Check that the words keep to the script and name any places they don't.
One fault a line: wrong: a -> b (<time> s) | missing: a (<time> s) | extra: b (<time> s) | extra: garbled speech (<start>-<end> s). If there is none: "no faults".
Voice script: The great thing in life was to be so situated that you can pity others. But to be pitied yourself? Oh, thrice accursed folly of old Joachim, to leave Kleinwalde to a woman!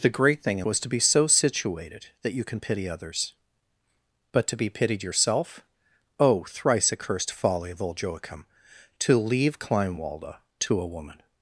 missing: life (0.7 s)